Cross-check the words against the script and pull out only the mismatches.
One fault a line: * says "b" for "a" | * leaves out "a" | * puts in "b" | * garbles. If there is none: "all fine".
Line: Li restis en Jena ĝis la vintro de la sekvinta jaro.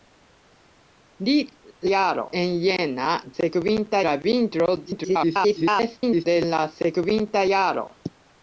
* says "jaro" for "restis"
* says "sekvinta" for "ĝis"
* garbles